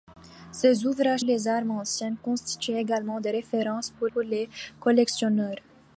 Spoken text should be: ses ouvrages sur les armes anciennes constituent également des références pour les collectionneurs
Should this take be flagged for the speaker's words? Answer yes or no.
yes